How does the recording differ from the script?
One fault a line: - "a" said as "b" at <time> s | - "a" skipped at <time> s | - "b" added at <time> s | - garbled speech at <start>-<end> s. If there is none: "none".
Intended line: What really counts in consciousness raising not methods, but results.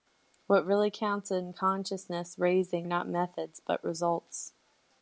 none